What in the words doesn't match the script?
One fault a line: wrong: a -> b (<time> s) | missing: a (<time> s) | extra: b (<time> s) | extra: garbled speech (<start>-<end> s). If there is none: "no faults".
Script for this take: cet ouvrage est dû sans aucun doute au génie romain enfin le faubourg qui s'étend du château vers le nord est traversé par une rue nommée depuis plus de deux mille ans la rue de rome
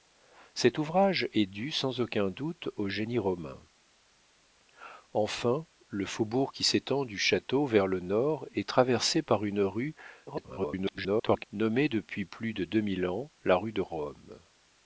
extra: garbled speech (10.3-11.5 s)